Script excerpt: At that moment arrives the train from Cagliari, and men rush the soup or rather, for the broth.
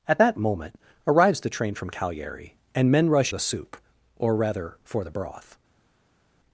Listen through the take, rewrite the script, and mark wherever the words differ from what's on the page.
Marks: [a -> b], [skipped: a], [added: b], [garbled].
At that moment arrives the train from Cagliari, and men rush the soup or rather, for the broth.